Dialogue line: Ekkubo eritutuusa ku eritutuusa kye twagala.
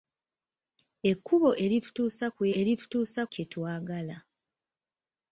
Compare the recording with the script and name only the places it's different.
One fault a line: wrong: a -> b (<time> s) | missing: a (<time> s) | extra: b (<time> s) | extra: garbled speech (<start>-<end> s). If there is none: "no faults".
no faults